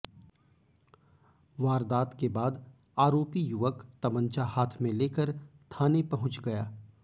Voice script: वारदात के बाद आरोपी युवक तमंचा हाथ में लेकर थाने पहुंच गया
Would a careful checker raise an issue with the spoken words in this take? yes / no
no